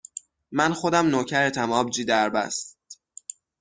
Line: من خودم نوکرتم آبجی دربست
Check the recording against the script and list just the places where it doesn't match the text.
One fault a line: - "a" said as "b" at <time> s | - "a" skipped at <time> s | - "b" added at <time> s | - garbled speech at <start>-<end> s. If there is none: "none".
none